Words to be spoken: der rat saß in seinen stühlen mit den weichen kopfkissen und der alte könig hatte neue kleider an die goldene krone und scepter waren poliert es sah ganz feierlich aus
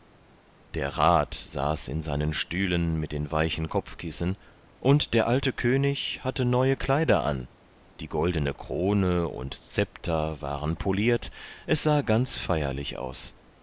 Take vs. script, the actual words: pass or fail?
pass